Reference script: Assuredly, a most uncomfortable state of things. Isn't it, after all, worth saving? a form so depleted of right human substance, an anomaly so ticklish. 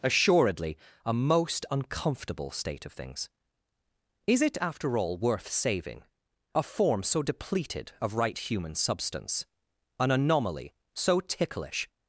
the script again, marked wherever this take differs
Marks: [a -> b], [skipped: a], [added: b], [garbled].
Assuredly, a most uncomfortable state of things. [Isn't -> Is] it, after all, worth saving? a form so depleted of right human substance, an anomaly so ticklish.